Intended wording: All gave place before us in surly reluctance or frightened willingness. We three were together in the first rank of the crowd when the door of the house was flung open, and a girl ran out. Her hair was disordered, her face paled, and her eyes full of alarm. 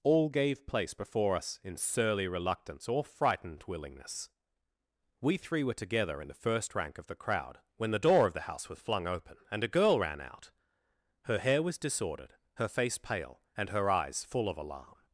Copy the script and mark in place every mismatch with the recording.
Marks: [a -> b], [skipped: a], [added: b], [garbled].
All gave place before us in surly reluctance or frightened willingness. We three were together in the first rank of the crowd when the door of the house was flung open, and a girl ran out. Her hair was disordered, her face [paled, -> pale] and her eyes full of alarm.